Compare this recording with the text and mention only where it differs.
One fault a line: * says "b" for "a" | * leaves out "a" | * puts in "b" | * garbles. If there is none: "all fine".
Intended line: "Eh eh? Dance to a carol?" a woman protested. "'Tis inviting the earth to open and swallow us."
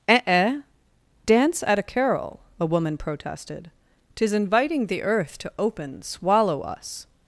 * says "at" for "to"
* leaves out "and"